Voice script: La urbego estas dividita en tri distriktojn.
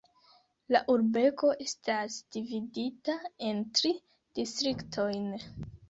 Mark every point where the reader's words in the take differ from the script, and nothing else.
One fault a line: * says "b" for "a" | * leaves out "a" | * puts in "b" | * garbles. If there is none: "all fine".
all fine